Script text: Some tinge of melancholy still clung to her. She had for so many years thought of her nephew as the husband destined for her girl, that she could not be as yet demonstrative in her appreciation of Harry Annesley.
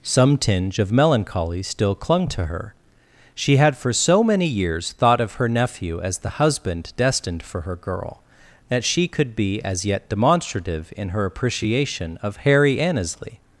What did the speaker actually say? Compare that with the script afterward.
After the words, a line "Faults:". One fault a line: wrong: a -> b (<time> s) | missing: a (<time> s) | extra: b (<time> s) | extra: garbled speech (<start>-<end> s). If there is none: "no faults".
Some tinge of melancholy still clung to her. She had for so many years thought of her nephew as the husband destined for her girl, that she could be as yet demonstrative in her appreciation of Harry Annesley.
Faults:
missing: not (9.3 s)